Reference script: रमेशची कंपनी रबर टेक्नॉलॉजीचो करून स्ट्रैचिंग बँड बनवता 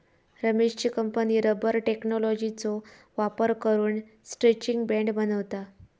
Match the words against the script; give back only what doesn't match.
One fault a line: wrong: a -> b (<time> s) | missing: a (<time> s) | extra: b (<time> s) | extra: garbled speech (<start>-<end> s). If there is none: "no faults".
extra: वापर (3.2 s)